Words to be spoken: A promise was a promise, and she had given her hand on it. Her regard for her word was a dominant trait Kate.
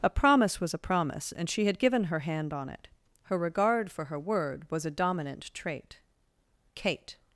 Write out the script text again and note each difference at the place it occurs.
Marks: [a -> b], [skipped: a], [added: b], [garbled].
A promise was a promise, and she had given her hand on it. Her regard for her word was a dominant trait Kate.